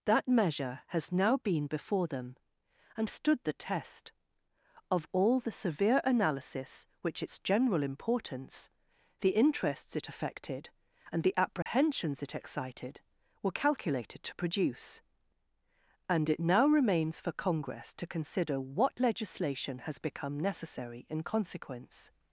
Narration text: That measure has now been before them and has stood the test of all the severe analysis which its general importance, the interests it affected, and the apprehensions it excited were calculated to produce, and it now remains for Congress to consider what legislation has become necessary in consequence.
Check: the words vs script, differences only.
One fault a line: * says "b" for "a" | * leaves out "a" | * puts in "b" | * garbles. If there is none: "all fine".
* leaves out "has"